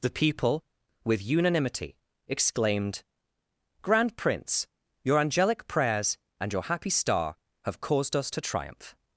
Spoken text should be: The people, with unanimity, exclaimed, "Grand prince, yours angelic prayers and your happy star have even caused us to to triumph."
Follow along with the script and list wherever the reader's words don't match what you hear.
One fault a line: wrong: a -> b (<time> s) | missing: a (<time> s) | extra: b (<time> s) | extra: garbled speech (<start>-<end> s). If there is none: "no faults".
wrong: yours -> your (5.0 s)
missing: even (7.8 s)
missing: to (8.4 s)